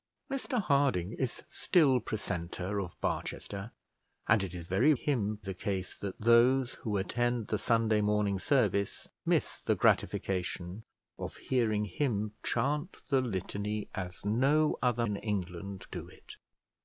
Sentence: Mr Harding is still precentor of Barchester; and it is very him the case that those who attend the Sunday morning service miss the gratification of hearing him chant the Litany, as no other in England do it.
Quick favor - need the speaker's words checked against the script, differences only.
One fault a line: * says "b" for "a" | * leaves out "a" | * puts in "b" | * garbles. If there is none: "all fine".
all fine